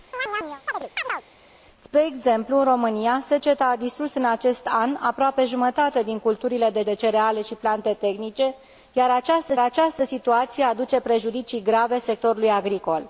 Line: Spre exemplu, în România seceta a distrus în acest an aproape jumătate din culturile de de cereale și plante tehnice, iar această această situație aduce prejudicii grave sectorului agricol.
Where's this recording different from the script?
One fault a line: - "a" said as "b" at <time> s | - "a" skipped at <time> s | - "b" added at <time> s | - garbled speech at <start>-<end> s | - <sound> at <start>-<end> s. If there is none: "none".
- chirp at 0.1-1.2 s